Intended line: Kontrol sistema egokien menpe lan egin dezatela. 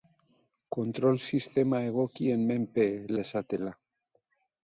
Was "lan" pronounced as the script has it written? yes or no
no